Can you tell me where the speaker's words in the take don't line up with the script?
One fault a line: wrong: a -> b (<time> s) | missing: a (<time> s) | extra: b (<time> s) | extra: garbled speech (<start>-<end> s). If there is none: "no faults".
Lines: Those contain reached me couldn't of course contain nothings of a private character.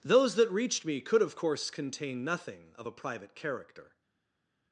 wrong: contain -> that (0.3 s)
wrong: couldn't -> could (1.0 s)
wrong: nothings -> nothing (2.2 s)